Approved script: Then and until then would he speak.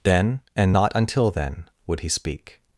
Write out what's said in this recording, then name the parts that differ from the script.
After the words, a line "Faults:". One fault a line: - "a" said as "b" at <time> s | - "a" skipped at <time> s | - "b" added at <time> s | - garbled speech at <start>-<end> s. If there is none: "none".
Then and not until then would he speak.
Faults:
- "not" added at 0.7 s